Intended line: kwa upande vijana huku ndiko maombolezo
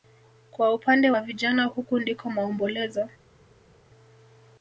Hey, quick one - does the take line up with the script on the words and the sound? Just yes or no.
no